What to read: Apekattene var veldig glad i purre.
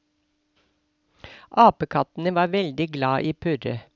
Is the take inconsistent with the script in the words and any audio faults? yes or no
no